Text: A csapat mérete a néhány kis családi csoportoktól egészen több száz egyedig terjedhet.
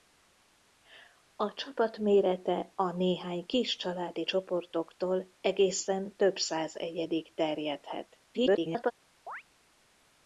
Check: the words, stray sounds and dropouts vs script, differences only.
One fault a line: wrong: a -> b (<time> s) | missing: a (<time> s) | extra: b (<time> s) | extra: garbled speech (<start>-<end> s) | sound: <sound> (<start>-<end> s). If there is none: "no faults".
extra: garbled speech (8.3-8.9 s)
sound: chirp (9.3-9.4 s)